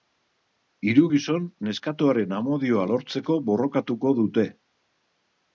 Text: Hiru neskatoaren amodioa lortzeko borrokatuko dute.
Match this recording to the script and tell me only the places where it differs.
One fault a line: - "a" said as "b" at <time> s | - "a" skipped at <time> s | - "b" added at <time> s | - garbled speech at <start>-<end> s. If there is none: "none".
- "gizon" added at 1.1 s